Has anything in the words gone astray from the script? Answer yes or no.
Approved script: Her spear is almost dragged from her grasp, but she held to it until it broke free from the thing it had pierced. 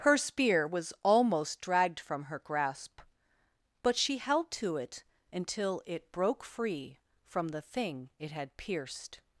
yes